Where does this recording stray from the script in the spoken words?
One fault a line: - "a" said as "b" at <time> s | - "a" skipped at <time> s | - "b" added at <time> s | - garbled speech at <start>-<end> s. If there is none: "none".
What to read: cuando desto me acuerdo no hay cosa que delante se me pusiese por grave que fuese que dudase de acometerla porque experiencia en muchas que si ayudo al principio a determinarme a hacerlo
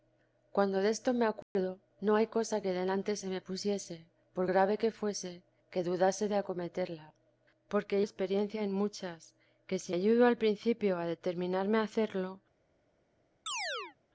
none